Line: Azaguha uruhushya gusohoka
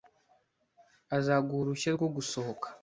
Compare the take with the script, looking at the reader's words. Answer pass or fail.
fail